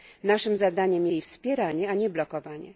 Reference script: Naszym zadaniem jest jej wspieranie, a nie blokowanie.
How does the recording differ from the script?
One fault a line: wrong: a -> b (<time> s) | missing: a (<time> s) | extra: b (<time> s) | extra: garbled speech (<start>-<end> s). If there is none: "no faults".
missing: jest (1.1 s)